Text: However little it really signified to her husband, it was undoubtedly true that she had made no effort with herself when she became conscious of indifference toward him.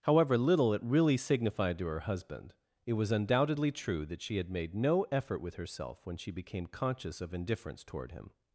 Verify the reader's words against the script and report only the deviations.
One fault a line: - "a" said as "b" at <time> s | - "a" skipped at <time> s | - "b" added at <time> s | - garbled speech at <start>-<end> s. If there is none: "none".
none